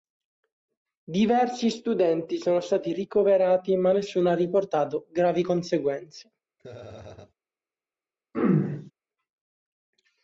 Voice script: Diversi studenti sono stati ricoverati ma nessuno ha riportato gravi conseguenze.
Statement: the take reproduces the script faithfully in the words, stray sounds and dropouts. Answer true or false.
false